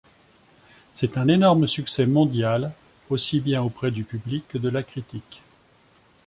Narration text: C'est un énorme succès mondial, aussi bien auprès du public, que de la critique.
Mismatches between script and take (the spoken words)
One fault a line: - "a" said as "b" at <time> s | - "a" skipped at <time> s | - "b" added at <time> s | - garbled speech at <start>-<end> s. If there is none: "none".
none